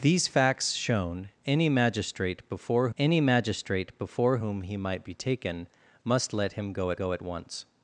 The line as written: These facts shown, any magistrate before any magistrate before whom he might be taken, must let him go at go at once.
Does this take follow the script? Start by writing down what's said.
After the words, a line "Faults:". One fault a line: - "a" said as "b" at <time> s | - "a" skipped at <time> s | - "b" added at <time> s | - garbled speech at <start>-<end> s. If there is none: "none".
These facts shown, any magistrate before any magistrate before whom he might be taken, must let him go at go at once.
Faults:
none